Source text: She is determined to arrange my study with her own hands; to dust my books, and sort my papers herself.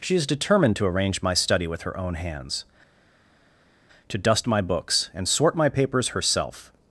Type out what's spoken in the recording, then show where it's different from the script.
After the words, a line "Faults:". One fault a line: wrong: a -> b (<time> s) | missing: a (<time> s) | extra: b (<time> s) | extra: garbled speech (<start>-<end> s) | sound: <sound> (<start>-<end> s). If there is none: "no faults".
She is determined to arrange my study with her own hands; to dust my books, and sort my papers herself.
Faults:
no faults